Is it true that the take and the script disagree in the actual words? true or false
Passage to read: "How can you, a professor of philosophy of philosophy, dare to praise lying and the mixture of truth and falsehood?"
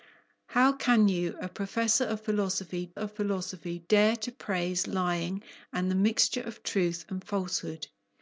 false